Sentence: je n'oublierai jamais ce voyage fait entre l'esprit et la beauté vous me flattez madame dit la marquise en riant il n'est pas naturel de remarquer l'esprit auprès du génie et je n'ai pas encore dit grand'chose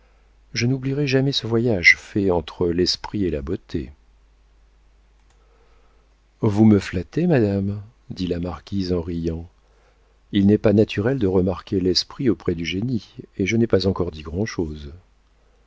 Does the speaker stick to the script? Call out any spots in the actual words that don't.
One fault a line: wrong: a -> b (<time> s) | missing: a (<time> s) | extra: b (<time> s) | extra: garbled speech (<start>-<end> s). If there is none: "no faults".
no faults